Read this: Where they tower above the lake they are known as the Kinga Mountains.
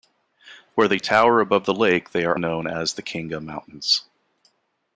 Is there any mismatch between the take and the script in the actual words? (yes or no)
no